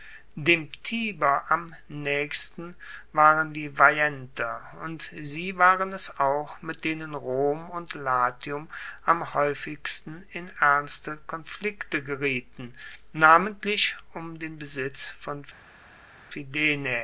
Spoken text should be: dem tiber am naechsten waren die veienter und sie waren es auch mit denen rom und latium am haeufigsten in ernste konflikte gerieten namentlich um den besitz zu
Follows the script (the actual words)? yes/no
no